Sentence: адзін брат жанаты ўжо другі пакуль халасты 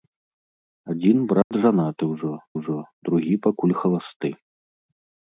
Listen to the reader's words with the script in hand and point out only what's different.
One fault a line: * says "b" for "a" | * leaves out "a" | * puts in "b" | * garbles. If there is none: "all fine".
* puts in "ўжо"